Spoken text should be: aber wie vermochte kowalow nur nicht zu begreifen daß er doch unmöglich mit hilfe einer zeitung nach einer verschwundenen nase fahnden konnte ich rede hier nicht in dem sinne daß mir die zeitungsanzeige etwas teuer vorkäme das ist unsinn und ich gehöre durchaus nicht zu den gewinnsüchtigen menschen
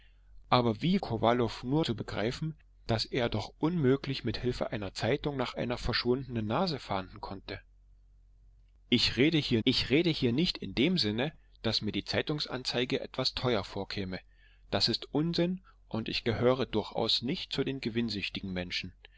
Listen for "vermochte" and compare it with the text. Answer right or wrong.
wrong